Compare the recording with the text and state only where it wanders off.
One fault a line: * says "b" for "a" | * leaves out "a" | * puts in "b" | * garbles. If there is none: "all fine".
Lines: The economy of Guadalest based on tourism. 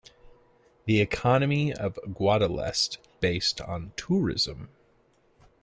all fine